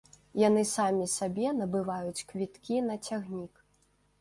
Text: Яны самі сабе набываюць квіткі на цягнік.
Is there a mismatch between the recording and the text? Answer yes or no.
no